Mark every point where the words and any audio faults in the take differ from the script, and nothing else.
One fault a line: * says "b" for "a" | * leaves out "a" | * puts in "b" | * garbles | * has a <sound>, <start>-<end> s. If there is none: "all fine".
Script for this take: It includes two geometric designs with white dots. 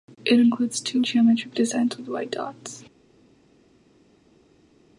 all fine